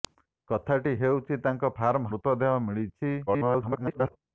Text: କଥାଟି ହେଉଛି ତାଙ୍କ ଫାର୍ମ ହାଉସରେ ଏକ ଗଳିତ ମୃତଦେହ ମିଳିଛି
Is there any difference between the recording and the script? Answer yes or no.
yes